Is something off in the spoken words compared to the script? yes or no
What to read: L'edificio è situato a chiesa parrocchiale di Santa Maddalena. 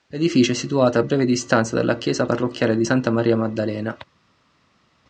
yes